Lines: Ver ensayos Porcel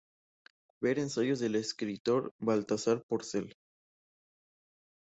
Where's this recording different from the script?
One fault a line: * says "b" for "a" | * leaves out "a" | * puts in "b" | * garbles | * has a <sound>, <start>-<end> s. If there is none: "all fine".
* puts in "del escritor Baltasar"